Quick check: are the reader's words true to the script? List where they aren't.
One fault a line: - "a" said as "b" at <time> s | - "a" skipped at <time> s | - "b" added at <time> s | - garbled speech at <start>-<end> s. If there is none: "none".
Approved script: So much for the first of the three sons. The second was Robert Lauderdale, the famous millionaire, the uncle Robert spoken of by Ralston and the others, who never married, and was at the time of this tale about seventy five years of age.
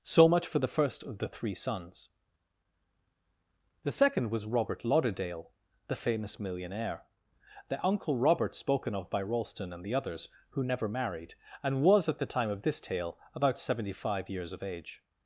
none